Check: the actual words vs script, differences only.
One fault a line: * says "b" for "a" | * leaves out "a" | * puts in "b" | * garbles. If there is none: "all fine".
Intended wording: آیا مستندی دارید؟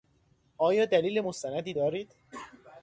* puts in "دلیل"